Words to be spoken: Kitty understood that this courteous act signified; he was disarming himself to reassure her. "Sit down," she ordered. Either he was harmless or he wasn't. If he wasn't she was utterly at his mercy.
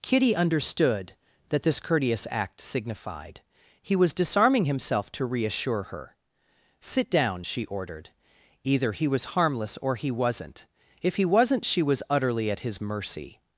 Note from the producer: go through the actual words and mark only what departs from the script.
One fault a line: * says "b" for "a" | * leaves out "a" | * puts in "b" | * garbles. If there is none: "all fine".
all fine